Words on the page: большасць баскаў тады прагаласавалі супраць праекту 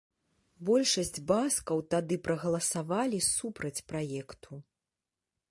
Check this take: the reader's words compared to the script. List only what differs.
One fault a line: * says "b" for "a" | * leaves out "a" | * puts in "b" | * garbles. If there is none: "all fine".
all fine